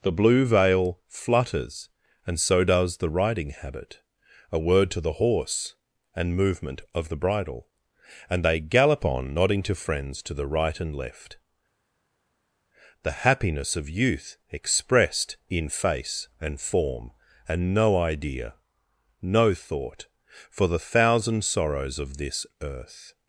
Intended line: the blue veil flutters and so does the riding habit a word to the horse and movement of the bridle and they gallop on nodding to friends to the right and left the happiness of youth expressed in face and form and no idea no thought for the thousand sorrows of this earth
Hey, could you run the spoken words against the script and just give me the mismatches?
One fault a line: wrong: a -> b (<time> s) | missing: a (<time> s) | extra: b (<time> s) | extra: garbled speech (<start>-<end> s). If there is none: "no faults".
no faults